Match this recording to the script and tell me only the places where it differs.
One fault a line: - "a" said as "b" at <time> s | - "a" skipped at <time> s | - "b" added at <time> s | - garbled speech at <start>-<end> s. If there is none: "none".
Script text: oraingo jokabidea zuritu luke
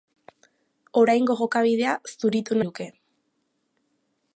none